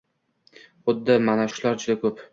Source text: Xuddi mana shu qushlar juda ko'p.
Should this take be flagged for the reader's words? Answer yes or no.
yes